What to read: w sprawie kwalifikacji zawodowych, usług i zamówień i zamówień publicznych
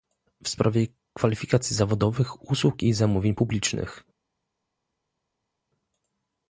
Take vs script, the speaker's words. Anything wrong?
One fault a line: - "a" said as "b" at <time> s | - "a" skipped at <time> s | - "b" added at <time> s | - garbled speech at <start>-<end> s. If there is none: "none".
- "i zamówień" skipped at 3.4 s